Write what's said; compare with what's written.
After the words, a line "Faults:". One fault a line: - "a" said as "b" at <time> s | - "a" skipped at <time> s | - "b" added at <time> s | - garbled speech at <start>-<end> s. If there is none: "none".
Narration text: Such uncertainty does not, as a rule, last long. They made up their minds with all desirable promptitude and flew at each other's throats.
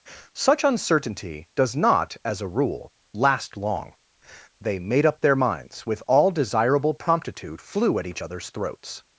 Such uncertainty does not, as a rule, last long. They made up their minds with all desirable promptitude flew at each other's throats.
Faults:
- "and" skipped at 7.6 s